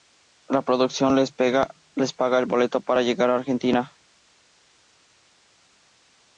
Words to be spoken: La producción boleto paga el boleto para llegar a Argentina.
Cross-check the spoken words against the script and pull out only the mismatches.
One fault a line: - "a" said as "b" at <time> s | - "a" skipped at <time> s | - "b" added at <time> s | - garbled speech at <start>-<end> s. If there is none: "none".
- "boleto" said as "les" at 1.1 s